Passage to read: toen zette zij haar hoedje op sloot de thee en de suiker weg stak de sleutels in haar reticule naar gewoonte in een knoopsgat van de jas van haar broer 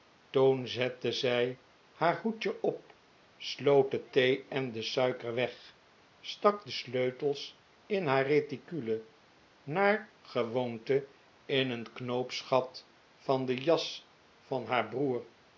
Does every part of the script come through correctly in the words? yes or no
yes